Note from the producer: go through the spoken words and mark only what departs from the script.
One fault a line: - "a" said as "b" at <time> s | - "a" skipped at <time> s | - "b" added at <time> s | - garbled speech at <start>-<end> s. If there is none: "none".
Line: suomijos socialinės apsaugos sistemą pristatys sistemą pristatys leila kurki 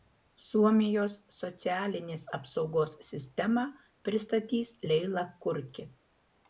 - "sistemą pristatys" skipped at 4.8 s